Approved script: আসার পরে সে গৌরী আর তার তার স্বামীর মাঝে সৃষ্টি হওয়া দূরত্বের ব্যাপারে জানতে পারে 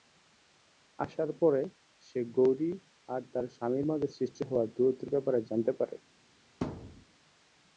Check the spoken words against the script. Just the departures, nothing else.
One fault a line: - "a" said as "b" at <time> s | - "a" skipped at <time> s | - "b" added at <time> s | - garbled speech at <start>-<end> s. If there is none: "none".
- "তার" skipped at 3.5 s